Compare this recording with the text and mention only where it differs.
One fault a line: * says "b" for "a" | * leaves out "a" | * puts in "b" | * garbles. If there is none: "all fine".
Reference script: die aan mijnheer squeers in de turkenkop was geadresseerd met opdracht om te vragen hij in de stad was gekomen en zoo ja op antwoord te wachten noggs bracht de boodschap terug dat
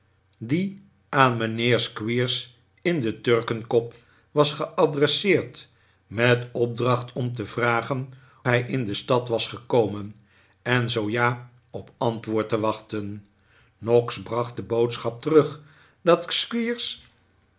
all fine